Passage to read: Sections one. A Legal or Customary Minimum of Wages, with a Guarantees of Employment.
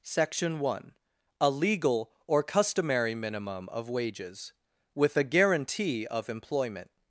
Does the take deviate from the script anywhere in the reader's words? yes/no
yes